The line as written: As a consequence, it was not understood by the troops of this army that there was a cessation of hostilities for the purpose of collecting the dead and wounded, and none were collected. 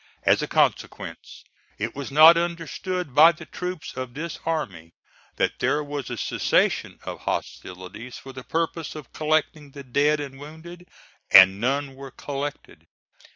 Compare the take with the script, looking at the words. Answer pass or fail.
pass